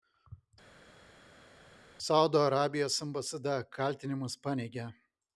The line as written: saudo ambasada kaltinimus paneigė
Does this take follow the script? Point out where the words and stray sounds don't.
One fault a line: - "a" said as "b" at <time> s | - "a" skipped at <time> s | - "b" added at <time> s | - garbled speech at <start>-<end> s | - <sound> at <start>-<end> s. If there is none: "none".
- "arabijos" added at 2.5 s